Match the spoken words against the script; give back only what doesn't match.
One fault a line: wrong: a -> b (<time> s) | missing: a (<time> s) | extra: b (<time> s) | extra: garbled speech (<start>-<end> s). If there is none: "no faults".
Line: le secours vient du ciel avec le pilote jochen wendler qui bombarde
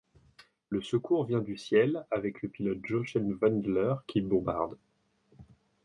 no faults